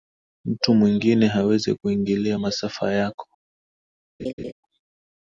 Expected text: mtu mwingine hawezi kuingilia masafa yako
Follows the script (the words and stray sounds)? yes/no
no